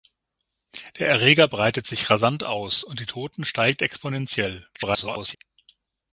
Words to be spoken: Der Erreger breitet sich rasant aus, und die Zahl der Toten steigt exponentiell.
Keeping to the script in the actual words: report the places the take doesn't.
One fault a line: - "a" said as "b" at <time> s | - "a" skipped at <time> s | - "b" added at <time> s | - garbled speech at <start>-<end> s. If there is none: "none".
- "Zahl der" skipped at 3.1 s
- garbled speech at 4.7-5.4 s